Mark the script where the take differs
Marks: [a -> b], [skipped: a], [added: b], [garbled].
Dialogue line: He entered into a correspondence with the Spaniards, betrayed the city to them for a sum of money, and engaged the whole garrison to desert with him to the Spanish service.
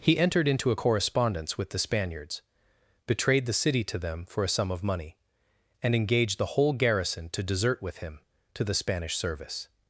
He entered into a correspondence with the Spaniards, betrayed the city to them for a sum of money, and engaged the whole garrison to desert with him to the Spanish service.